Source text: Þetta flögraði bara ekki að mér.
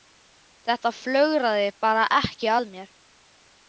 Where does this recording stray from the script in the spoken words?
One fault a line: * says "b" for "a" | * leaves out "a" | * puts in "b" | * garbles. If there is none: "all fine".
all fine